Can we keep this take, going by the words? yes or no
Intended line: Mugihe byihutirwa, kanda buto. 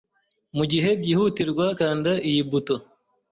no